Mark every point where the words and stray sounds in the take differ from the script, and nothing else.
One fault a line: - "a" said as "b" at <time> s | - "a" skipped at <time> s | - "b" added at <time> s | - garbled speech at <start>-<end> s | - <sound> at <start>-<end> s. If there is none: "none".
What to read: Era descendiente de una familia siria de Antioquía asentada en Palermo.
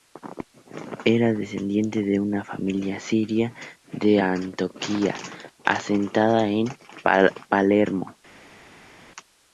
none